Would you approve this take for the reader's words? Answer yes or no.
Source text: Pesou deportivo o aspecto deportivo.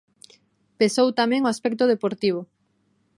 no